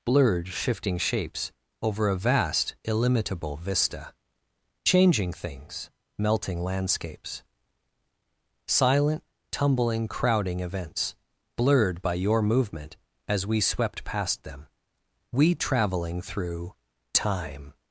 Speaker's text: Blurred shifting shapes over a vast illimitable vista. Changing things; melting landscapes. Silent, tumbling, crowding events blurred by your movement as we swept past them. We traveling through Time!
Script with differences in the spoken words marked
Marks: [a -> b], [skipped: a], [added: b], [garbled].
Blurred shifting shapes over a vast illimitable vista. Changing things; melting landscapes. Silent, tumbling, crowding events blurred by your movement as we swept past them. We traveling through Time!